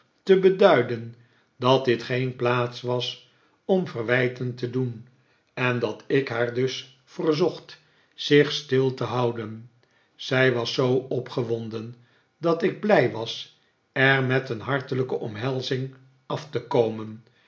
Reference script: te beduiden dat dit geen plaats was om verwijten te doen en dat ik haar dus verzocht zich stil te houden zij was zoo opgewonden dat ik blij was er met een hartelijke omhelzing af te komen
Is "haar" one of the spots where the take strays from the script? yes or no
no